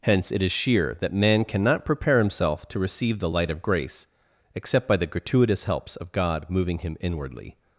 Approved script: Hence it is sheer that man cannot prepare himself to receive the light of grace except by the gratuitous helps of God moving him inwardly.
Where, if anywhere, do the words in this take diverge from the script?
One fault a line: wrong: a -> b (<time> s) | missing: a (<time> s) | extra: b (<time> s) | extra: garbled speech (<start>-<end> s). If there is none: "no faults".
no faults